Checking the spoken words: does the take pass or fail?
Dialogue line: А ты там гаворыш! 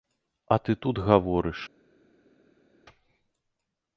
fail